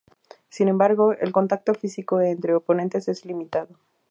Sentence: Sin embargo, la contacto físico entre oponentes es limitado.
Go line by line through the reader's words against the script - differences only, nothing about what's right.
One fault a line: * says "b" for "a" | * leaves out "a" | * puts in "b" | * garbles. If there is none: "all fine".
* says "el" for "la"